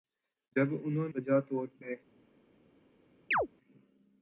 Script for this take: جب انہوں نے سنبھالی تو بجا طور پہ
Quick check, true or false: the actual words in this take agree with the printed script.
false